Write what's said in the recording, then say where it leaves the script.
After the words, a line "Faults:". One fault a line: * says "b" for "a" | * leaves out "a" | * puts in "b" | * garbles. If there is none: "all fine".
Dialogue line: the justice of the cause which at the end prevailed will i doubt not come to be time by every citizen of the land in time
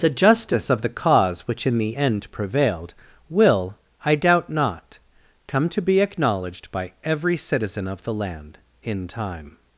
the justice of the cause which in the end prevailed will i doubt not come to be acknowledged by every citizen of the land in time
Faults:
* says "in" for "at"
* says "acknowledged" for "time"